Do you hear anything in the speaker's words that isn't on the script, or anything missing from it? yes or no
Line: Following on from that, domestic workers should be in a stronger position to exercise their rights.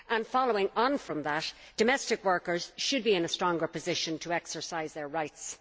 no